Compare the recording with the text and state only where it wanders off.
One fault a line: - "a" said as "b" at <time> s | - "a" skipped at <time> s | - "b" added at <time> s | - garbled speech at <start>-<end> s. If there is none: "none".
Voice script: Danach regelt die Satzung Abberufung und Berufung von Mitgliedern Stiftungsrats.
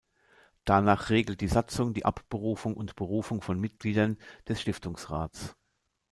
- "die" added at 1.9 s
- "des" added at 4.5 s